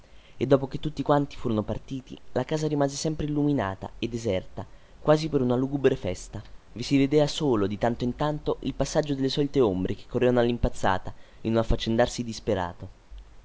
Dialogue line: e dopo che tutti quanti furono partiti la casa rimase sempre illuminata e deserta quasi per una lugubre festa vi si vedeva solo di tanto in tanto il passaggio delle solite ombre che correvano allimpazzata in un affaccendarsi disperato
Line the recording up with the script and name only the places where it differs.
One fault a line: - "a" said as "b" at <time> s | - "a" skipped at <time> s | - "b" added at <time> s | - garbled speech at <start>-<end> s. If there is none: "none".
none